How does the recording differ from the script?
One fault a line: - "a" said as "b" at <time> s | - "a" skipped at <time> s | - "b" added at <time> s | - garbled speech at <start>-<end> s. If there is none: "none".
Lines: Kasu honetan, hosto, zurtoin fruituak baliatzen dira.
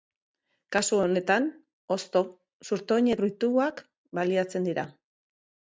none